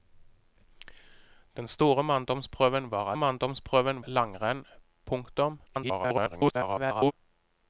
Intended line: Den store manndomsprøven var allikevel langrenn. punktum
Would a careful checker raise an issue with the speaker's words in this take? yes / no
yes